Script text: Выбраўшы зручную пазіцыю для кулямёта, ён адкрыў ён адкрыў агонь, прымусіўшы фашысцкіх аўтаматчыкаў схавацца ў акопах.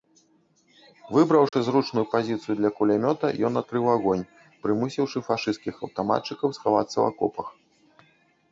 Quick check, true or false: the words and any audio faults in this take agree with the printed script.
false